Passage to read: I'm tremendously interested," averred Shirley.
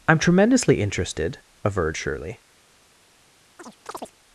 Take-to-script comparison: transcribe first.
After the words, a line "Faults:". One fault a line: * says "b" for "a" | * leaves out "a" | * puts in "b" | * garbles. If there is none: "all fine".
I'm tremendously interested," averred Shirley.
Faults:
all fine